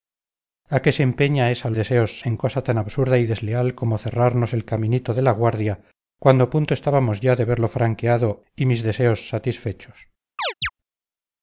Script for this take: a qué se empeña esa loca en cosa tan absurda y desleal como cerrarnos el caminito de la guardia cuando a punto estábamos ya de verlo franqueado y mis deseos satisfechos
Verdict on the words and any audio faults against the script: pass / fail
fail